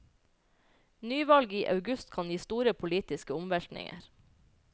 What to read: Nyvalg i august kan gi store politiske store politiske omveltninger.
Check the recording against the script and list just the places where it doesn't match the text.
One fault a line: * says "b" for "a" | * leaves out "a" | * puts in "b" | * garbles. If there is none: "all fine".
* leaves out "store politiske"